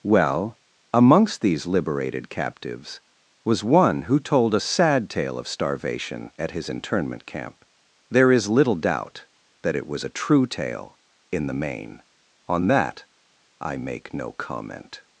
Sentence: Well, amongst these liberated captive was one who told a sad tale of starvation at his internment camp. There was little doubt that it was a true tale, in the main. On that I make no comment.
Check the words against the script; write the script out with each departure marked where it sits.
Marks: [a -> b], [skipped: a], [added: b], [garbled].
Well, amongst these liberated [captive -> captives] was one who told a sad tale of starvation at his internment camp. There [was -> is] little doubt that it was a true tale, in the main. On that I make no comment.